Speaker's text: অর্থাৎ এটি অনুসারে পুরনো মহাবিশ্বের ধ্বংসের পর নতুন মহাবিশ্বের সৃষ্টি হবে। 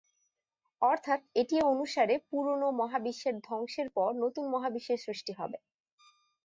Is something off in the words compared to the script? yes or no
no